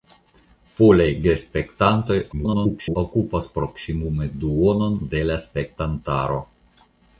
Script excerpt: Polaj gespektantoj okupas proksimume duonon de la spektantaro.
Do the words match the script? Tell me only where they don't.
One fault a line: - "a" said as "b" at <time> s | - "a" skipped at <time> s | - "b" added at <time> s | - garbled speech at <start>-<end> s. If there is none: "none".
- garbled speech at 2.3-3.0 s